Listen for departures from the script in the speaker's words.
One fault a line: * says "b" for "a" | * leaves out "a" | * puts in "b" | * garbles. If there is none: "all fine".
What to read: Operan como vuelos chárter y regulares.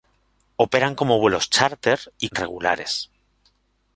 all fine